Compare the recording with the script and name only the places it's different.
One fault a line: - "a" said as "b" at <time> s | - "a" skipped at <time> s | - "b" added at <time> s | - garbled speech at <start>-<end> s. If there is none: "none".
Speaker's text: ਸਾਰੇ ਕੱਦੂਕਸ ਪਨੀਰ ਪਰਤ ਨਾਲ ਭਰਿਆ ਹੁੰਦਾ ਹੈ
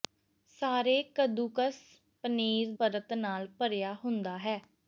none